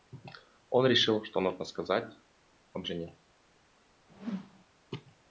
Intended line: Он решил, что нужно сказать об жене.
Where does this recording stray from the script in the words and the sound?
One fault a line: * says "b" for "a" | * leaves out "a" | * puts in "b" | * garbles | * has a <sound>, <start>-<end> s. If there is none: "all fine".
* has a whoosh, 4.1-4.6 s